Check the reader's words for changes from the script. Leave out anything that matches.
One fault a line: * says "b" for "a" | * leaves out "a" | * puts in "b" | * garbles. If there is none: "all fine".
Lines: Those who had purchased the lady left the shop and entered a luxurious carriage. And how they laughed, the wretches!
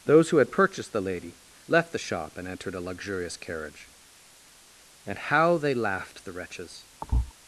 all fine